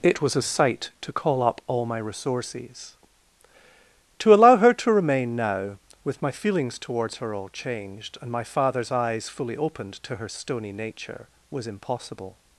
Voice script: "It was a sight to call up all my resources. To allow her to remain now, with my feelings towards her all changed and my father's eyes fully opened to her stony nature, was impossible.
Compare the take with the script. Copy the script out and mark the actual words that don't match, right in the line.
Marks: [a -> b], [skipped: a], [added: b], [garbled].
"It was a sight to call up all my resources. To allow her to remain now, with my feelings towards her all changed and my father's eyes fully opened to her stony nature, was impossible.